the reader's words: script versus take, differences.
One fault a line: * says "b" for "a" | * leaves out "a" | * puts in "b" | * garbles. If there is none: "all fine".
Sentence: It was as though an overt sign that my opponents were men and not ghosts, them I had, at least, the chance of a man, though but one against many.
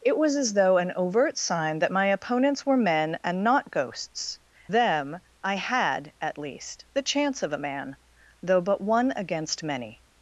all fine